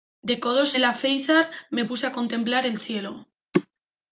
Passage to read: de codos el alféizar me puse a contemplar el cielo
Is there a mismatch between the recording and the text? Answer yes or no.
no